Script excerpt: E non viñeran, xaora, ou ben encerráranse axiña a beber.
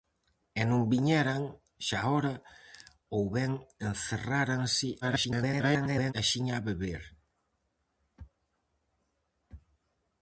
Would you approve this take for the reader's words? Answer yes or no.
no